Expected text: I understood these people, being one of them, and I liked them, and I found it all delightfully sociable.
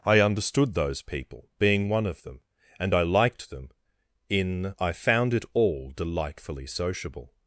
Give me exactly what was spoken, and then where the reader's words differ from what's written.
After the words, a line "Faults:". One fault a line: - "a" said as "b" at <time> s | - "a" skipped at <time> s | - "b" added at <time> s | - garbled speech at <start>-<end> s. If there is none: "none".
I understood those people, being one of them, and I liked them, in I found it all delightfully sociable.
Faults:
- "these" said as "those" at 0.7 s
- "and" said as "in" at 4.3 s